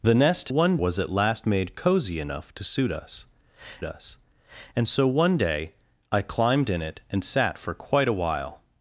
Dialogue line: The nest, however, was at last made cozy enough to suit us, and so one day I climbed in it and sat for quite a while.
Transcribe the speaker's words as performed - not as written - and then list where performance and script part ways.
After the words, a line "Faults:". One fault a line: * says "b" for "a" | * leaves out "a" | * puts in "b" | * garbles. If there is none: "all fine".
The nest, one, was at last made cozy enough to suit us us, and so one day I climbed in it and sat for quite a while.
Faults:
* says "one" for "however"
* puts in "us"